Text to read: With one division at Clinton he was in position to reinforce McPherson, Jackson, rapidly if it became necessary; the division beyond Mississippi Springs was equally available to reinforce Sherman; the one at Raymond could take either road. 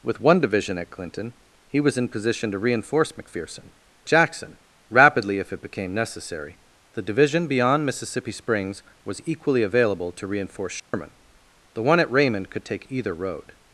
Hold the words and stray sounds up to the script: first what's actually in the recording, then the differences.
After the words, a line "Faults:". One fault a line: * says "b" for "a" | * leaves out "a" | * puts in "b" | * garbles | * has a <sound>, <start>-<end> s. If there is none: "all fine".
With one division at Clinton he was in position to reinforce McPherson, Jackson, rapidly if it became necessary; the division beyond Mississippi Springs was equally available to reinforce Sherman; the one at Raymond could take either road.
Faults:
* has a dropout, 10.8-10.9 s